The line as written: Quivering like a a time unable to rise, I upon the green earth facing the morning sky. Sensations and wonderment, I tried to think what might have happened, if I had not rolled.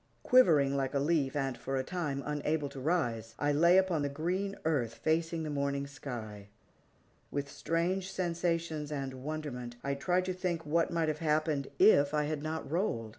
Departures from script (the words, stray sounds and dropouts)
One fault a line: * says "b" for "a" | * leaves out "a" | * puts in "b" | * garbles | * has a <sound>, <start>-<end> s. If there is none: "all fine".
* puts in "leaf and for"
* puts in "lay"
* puts in "With strange"